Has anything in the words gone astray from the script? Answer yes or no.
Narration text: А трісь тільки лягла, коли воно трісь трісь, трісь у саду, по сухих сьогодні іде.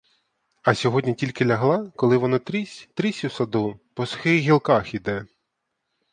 yes